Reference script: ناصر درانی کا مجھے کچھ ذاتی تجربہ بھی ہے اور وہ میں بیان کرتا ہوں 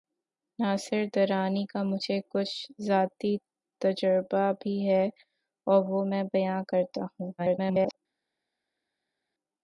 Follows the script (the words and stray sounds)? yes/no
no